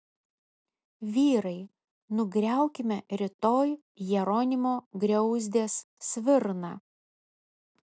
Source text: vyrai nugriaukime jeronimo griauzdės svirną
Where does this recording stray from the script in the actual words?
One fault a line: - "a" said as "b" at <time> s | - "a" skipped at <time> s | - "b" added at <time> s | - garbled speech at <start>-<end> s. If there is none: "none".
- "rytoj" added at 3.2 s